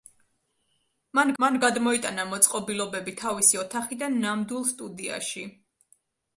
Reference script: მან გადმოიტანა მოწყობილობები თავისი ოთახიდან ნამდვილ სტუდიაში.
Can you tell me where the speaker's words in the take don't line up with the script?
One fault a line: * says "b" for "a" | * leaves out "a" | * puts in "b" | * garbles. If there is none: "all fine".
* puts in "მან"